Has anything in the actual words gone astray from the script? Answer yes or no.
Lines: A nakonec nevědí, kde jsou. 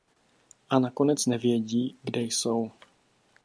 no